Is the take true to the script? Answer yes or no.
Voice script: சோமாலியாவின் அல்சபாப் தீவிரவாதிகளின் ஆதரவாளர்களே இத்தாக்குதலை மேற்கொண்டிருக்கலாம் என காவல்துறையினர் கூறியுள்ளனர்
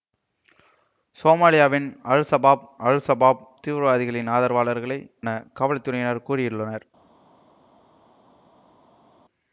no